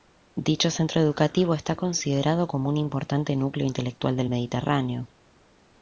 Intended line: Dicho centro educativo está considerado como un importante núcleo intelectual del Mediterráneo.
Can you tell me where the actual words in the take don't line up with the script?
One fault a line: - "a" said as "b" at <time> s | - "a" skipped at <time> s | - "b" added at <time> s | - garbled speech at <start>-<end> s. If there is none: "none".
none